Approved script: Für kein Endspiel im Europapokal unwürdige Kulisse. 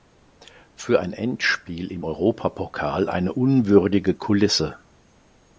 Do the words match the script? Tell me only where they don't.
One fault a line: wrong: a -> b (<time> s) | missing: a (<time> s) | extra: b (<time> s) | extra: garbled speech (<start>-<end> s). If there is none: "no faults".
wrong: kein -> ein (1.0 s)
extra: eine (3.1 s)